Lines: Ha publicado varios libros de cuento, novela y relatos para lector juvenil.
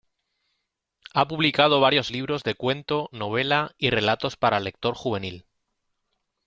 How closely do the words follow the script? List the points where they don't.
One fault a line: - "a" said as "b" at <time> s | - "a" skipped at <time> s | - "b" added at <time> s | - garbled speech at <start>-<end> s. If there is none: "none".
none